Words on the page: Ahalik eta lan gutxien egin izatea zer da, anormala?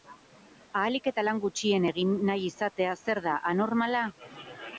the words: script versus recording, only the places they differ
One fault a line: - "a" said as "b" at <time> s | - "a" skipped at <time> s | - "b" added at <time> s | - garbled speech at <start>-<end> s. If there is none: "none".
- "nahi" added at 2.3 s